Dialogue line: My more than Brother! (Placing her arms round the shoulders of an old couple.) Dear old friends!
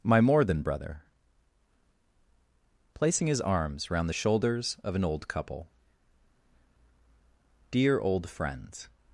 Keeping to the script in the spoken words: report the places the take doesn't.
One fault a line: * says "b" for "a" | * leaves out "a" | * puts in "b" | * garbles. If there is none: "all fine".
* says "his" for "her"